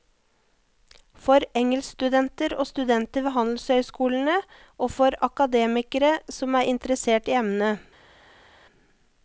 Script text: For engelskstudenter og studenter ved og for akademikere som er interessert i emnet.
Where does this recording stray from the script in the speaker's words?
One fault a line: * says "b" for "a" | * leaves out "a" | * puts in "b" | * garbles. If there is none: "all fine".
* puts in "handelshøyskolene"